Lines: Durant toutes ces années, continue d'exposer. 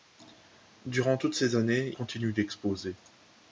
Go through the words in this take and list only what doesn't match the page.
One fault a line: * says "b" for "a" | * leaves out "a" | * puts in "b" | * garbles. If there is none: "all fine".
all fine